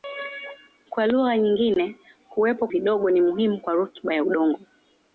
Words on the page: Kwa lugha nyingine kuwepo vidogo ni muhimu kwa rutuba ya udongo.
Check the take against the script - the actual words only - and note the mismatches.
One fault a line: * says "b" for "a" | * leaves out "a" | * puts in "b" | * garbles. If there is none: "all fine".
all fine